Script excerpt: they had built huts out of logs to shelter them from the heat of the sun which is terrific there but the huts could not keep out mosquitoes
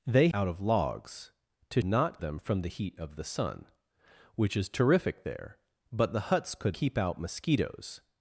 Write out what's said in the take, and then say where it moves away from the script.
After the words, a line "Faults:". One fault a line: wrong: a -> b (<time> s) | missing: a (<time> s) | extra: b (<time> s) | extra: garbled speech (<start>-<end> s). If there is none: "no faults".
they out of logs to not them from the heat of the sun which is terrific there but the huts could keep out mosquitoes
Faults:
missing: had built huts (0.3 s)
wrong: shelter -> not (1.8 s)
missing: not (6.8 s)